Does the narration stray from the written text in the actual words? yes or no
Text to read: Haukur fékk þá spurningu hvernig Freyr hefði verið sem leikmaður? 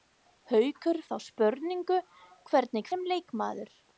yes